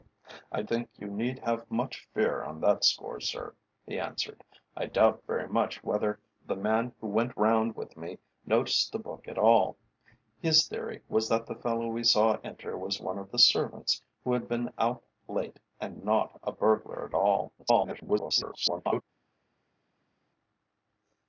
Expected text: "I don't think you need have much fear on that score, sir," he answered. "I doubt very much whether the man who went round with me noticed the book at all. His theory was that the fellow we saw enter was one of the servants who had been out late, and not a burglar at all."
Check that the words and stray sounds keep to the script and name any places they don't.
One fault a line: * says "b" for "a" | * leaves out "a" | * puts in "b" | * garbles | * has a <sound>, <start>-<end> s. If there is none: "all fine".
* leaves out "don't"
* garbles